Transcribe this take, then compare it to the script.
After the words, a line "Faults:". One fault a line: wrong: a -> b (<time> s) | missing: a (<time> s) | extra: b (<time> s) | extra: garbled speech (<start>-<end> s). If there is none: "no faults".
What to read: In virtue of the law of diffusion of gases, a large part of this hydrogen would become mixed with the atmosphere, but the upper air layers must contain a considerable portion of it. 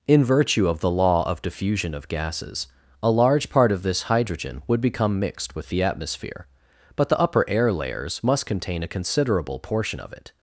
In virtue of the law of diffusion of gases, a large part of this hydrogen would become mixed with the atmosphere, but the upper air layers must contain a considerable portion of it.
Faults:
no faults